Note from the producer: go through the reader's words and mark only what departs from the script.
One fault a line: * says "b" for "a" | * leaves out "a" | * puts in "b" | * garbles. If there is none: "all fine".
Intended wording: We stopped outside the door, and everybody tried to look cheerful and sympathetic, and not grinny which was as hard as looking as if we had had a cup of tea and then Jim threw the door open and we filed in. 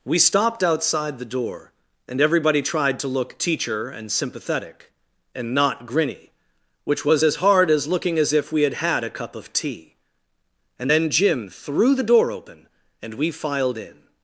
* says "teacher" for "cheerful"